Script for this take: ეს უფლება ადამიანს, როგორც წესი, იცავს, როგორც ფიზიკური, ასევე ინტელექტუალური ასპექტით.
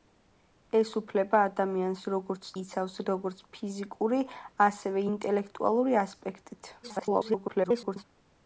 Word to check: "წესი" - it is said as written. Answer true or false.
false